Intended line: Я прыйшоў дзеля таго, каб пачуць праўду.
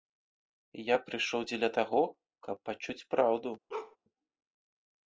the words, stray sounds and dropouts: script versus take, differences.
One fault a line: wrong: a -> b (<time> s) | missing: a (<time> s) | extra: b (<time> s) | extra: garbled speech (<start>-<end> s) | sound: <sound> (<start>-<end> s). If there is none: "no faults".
sound: bark (3.7-4.0 s)